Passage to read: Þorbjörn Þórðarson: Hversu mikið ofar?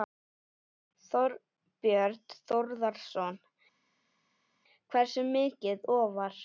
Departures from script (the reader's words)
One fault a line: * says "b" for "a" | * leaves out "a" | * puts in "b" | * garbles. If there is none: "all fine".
all fine